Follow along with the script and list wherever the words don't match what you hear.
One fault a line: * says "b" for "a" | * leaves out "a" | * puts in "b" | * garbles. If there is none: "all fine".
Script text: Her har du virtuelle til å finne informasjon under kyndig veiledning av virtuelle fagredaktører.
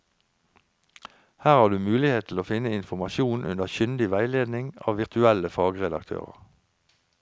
* says "mulighet" for "virtuelle"